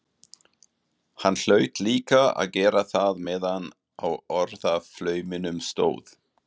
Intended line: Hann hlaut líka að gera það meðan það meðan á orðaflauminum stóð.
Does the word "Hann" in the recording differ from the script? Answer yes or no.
no